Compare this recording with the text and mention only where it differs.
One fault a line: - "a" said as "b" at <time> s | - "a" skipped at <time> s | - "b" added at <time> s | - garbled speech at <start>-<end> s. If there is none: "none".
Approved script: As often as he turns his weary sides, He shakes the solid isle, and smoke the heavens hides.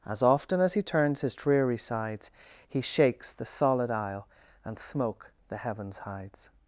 - "weary" said as "dreary" at 1.4 s